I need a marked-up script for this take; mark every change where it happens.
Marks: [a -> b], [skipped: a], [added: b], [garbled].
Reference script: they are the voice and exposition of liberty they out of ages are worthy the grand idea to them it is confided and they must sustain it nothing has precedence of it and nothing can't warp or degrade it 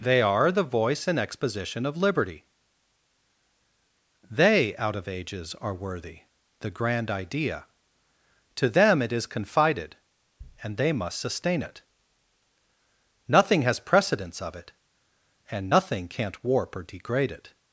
they are the voice and exposition of liberty they out of ages are worthy the grand idea to them it is confided and they must sustain it nothing has precedence of it and nothing can't warp or degrade it